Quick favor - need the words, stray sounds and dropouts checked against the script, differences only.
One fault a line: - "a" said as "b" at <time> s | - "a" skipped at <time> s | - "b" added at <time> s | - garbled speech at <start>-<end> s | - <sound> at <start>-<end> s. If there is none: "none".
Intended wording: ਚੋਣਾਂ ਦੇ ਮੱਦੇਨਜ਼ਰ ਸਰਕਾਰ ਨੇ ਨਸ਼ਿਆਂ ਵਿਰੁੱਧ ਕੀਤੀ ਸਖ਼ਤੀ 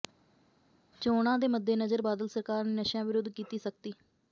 - "ਬਾਦਲ" added at 2.0 s